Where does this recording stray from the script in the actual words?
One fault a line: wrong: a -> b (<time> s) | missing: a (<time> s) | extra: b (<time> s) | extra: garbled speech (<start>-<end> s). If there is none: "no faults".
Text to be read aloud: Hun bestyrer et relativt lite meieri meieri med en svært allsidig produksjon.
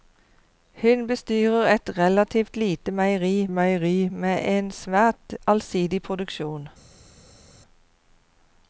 no faults